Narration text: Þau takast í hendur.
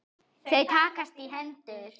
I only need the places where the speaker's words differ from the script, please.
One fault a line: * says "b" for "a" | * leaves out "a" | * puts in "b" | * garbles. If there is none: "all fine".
all fine